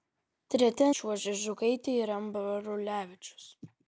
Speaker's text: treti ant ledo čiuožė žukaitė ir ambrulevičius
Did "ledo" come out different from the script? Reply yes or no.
yes